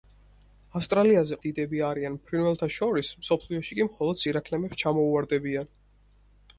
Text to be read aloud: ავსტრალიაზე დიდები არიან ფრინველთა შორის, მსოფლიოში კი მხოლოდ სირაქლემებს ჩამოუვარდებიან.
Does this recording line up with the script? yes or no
yes